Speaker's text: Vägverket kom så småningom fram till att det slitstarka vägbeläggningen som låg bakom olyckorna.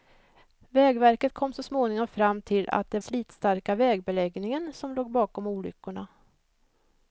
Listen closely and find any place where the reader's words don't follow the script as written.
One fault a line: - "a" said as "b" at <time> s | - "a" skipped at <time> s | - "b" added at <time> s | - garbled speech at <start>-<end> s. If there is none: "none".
none